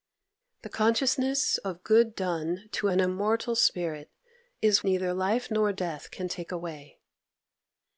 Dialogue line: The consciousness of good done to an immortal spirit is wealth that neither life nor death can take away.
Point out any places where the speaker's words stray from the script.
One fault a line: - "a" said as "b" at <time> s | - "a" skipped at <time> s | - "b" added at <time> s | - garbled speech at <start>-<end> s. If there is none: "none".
- "wealth that" skipped at 4.8 s